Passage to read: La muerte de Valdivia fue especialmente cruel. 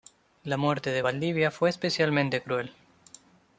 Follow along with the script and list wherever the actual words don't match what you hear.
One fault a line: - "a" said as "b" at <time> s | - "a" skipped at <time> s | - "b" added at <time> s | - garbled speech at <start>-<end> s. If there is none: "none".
none